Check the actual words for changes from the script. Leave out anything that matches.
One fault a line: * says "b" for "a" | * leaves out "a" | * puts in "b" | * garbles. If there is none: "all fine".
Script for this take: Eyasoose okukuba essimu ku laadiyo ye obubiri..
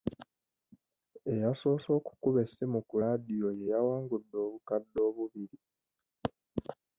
* puts in "yawangudde obukadde"